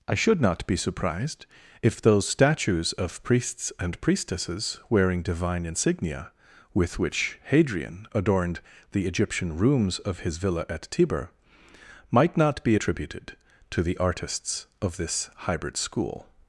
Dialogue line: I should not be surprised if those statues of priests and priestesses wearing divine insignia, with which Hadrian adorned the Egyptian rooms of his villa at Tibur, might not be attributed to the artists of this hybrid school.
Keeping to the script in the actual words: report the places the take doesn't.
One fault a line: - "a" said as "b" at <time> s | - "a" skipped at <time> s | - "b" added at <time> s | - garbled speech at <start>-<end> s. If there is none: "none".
none